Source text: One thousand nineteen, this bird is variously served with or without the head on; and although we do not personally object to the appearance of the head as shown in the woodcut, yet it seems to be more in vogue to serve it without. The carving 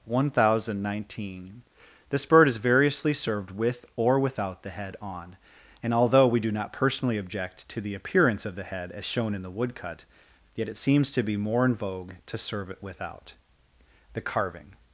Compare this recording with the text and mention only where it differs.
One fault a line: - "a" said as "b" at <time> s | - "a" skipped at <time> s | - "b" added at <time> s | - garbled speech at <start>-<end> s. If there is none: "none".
none